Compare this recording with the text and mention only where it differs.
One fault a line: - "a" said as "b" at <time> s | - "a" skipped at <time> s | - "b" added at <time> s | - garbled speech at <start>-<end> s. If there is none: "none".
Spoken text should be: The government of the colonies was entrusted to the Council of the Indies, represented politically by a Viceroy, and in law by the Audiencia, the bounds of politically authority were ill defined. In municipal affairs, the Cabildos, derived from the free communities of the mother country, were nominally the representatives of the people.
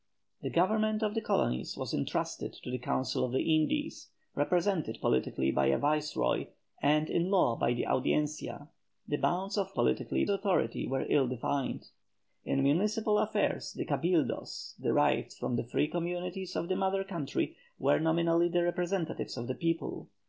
none